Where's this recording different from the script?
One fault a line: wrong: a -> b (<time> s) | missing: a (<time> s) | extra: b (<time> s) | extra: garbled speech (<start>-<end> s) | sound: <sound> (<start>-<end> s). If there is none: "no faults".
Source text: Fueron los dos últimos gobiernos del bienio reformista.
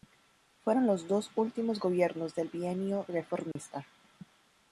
sound: dropout (3.5-3.6 s)